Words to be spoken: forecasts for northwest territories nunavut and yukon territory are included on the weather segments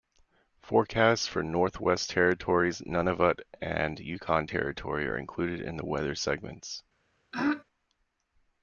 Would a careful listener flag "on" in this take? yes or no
yes